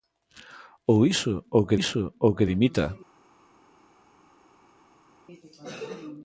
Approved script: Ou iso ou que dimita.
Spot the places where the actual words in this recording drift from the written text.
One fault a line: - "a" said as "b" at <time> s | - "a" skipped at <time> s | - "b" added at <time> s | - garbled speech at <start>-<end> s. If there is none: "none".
- "iso ou que" added at 1.7 s